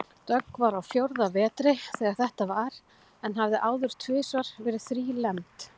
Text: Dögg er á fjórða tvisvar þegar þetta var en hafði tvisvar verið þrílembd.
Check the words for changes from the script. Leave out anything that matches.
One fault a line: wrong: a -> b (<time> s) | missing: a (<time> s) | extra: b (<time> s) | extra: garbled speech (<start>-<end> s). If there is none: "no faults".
wrong: er -> var (0.6 s)
wrong: tvisvar -> vetri (1.4 s)
extra: áður (3.7 s)